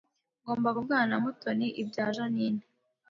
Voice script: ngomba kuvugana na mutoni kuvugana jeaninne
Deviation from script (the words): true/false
true